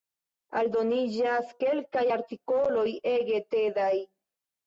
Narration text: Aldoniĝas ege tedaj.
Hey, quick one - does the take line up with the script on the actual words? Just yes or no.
no